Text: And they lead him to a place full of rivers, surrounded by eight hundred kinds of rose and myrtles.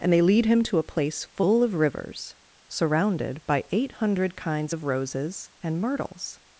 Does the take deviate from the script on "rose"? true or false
true